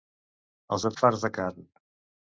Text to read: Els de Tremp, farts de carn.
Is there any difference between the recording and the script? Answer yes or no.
yes